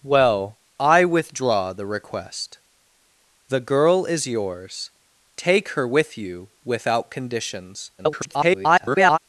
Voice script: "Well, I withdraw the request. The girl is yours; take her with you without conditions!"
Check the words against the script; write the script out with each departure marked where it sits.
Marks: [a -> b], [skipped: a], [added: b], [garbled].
"Well, I withdraw the request. The girl is yours; take her with you without conditions!" [garbled]